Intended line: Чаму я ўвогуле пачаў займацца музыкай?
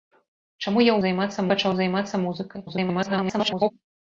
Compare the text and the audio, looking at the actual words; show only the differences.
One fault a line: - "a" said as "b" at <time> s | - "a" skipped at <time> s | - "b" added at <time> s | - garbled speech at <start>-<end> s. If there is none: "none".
- "ўвогуле" said as "займацца" at 1.1 s
- garbled speech at 2.6-3.7 s